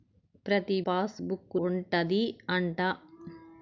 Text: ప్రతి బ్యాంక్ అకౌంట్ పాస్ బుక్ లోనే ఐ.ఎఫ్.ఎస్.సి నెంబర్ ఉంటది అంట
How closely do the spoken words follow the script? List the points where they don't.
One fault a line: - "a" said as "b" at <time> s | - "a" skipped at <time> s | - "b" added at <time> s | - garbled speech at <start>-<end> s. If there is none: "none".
- "బ్యాంక్ అకౌంట్" skipped at 0.8 s
- "లోనే ఐ.ఎఫ్.ఎస్.సి నెంబర్" skipped at 1.6 s